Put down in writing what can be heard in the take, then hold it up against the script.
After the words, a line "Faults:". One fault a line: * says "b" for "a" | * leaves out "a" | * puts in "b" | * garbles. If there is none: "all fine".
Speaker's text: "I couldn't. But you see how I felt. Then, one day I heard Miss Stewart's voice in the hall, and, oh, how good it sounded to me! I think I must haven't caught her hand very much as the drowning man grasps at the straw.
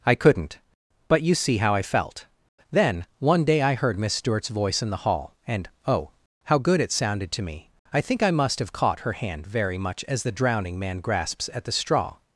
"I couldn't. But you see how I felt. Then, one day I heard Miss Stewart's voice in the hall, and, oh, how good it sounded to me! I think I must have caught her hand very much as the drowning man grasps at the straw.
Faults:
* says "have" for "haven't"